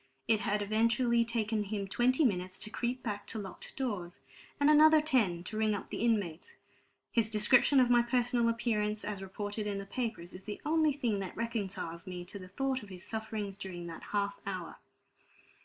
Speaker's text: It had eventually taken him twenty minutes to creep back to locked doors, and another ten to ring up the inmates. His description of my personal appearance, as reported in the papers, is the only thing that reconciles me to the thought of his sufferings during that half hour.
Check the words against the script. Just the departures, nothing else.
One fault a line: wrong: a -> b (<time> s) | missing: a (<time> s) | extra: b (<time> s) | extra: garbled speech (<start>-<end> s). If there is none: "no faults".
no faults